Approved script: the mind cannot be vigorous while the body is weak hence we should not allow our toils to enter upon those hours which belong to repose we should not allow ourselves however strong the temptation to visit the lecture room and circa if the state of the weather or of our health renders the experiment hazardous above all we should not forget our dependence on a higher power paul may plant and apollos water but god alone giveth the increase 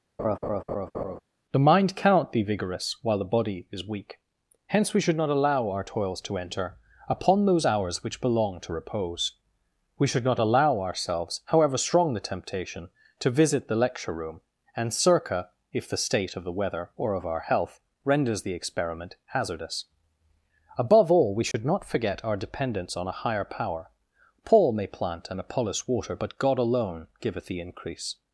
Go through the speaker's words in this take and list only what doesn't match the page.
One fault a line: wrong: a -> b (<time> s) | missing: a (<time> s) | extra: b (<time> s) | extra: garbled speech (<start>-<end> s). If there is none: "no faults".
no faults